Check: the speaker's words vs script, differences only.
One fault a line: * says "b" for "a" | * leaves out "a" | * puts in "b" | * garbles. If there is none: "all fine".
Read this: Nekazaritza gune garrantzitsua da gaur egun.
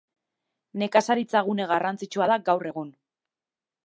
all fine